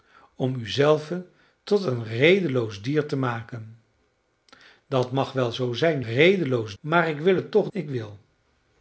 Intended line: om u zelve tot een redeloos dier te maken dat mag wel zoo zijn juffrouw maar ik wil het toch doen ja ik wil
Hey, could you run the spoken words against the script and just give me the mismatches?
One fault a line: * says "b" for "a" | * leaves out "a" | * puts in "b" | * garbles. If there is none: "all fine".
* says "redeloos" for "juffrouw"
* leaves out "doen ja"